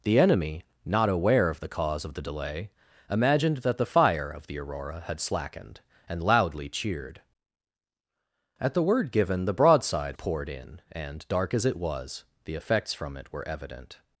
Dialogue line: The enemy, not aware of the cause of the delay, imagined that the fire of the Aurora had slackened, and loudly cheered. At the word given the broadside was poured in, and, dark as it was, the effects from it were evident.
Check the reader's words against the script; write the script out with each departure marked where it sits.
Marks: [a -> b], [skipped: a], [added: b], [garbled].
The enemy, not aware of the cause of the delay, imagined that the fire of the Aurora had slackened, and loudly cheered. At the word given the broadside [skipped: was] poured in, and, dark as it was, the effects from it were evident.